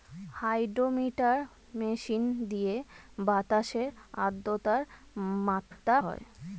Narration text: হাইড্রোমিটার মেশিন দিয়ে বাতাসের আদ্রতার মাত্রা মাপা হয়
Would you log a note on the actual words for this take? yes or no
yes